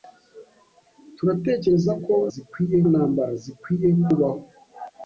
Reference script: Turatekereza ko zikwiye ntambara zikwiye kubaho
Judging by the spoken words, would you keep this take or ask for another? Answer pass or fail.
pass